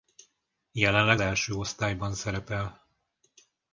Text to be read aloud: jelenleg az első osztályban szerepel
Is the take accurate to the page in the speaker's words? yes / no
no